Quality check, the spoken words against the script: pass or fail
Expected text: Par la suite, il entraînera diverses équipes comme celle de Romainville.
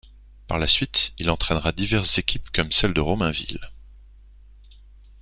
pass